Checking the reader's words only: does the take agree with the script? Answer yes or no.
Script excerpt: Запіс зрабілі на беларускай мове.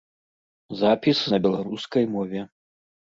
no